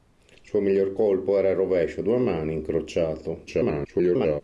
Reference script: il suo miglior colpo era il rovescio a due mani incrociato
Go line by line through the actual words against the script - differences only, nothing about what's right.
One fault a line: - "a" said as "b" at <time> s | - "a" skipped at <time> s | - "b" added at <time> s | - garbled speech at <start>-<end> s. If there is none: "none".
- garbled speech at 3.5-4.4 s